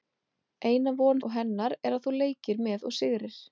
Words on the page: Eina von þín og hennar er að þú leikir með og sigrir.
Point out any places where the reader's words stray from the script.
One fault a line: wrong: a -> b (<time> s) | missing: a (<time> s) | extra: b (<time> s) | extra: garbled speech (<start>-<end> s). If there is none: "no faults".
missing: þín (1.2 s)